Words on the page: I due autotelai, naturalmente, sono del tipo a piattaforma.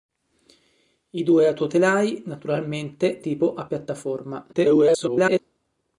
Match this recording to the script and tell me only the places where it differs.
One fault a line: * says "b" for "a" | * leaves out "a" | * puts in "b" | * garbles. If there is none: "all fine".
* leaves out "sono del"
* garbles